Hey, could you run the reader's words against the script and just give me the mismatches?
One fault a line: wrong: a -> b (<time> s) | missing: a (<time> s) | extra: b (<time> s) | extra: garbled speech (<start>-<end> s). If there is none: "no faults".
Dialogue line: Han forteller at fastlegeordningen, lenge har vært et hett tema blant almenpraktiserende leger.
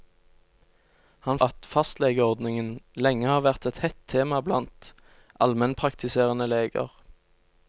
missing: forteller (1.4 s)